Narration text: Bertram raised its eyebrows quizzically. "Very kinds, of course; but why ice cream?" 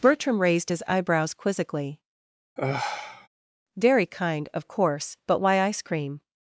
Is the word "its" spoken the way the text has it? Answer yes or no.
no